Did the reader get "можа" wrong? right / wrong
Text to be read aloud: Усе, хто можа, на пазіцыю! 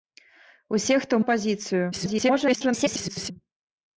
wrong